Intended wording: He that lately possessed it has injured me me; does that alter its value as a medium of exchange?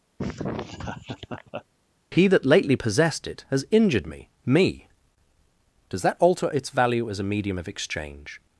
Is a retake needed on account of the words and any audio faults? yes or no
yes